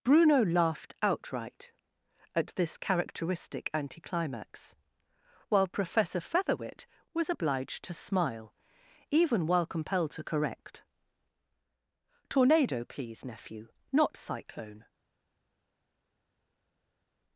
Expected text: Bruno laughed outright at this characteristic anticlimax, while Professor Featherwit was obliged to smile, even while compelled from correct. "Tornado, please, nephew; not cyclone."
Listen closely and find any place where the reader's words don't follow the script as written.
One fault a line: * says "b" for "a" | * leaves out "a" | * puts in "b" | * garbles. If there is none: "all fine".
* says "to" for "from"